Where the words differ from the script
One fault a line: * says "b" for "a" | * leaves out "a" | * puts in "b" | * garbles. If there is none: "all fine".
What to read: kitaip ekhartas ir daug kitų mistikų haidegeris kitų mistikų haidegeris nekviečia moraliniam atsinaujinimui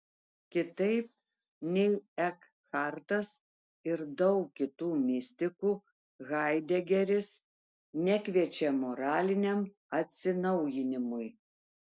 * puts in "nei"
* leaves out "kitų mistikų haidegeris"